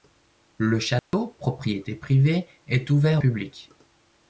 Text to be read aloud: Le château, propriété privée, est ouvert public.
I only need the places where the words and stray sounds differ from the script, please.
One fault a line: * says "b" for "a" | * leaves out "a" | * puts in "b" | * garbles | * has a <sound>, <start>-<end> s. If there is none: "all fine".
* has a dropout, 1.0-1.1 s